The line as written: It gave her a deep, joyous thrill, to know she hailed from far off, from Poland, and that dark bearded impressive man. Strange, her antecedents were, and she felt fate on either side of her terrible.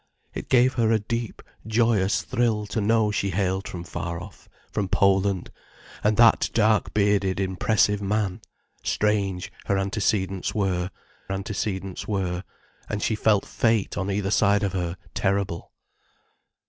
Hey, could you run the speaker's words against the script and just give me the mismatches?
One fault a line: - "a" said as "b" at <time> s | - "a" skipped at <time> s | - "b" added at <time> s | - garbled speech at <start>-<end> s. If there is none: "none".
- "antecedents were" added at 11.3 s